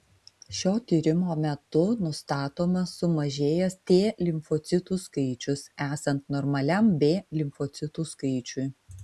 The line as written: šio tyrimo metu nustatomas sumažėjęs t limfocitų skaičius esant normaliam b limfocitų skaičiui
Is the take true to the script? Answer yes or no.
yes